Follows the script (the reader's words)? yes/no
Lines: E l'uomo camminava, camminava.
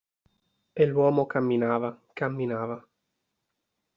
yes